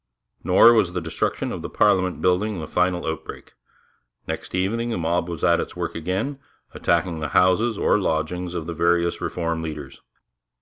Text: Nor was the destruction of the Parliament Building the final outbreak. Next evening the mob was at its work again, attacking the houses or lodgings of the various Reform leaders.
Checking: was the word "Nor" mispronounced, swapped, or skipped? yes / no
no